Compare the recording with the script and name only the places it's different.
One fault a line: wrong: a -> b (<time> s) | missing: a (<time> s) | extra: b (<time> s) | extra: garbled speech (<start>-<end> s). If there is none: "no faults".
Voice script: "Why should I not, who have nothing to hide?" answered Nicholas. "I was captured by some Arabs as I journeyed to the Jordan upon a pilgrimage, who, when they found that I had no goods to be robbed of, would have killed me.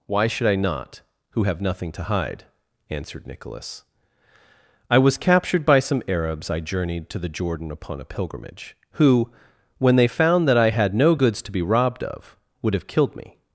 missing: as (6.5 s)